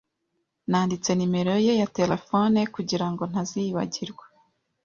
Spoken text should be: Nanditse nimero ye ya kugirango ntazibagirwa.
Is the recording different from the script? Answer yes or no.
yes